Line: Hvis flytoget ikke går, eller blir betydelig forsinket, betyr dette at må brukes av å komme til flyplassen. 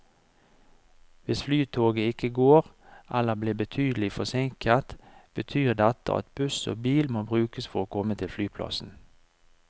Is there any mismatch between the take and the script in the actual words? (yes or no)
yes